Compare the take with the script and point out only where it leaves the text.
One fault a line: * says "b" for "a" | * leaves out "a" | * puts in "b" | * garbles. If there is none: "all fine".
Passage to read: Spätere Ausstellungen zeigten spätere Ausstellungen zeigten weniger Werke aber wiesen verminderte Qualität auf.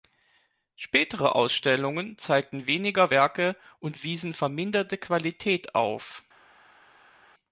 * leaves out "spätere Ausstellungen zeigten"
* says "und" for "aber"